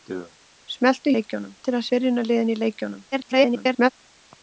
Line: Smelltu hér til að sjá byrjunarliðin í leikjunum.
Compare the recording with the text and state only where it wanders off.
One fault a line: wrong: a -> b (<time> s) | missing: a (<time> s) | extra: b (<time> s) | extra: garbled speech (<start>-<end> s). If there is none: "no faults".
wrong: hér -> leikjunum (1.2 s)
missing: sjá (1.9 s)
extra: garbled speech (3.1-3.9 s)